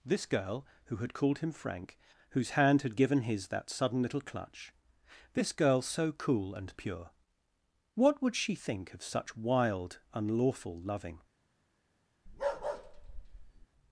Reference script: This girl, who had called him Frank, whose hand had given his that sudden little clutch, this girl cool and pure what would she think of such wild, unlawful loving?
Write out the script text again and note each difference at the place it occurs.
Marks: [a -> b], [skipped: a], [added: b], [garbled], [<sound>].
This girl, who had called him Frank, whose hand had given his that sudden little clutch, this girl [added: so] cool and pure what would she think of such wild, unlawful loving? [bark]